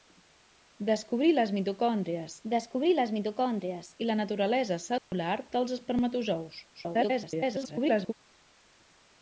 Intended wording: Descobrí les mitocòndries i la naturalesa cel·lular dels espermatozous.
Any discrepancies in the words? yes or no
yes